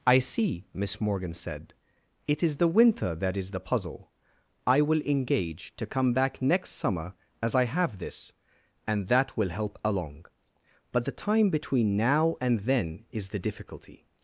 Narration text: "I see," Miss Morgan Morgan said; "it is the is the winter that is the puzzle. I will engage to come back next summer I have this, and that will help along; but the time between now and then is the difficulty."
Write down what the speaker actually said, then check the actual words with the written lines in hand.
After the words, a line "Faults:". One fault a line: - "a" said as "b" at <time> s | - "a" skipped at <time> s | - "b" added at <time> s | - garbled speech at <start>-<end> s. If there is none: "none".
"I see," Miss Morgan said; "it is the winter that is the puzzle. I will engage to come back next summer as I have this, and that will help along; but the time between now and then is the difficulty."
Faults:
- "Morgan" skipped at 1.3 s
- "is the" skipped at 2.7 s
- "as" added at 7.4 s